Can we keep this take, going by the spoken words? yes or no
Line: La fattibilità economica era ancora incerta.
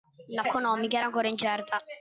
no